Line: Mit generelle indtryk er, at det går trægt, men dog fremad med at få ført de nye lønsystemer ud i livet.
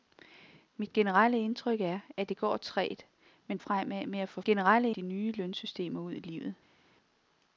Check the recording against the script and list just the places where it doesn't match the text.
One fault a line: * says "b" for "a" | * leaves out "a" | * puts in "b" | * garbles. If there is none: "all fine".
* leaves out "dog"
* says "generelle" for "ført"